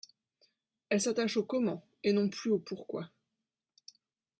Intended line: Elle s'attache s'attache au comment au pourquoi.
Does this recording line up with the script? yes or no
no